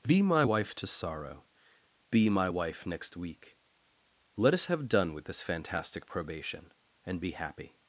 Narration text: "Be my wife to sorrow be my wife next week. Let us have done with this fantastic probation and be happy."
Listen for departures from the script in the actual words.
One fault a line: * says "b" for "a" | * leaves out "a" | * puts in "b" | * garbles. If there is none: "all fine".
all fine